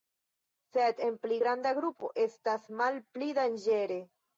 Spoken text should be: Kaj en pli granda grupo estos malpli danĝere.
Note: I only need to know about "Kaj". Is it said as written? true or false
false